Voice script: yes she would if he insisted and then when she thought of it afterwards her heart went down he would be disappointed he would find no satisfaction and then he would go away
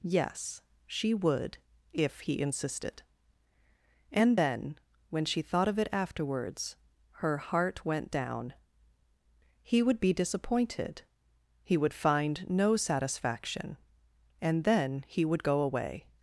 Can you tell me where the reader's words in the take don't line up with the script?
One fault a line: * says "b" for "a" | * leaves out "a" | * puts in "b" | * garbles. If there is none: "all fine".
all fine